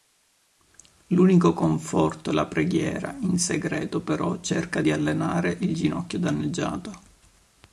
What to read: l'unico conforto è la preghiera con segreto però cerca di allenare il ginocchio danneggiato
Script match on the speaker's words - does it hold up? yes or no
no